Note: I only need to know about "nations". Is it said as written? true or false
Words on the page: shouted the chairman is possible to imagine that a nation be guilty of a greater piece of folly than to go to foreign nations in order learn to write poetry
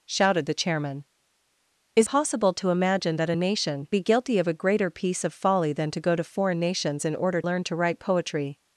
true